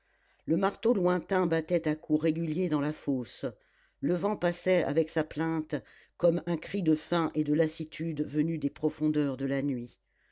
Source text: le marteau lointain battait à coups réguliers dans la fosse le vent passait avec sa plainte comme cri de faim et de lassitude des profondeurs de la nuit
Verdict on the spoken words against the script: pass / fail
fail